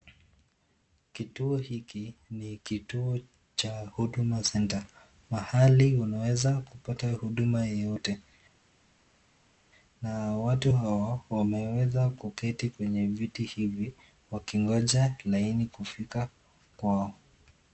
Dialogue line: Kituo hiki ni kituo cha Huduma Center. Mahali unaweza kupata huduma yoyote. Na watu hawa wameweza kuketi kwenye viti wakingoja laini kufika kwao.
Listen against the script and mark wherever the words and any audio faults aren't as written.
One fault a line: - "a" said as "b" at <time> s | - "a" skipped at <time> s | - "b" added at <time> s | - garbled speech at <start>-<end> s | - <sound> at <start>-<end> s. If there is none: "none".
- "hivi" added at 13.4 s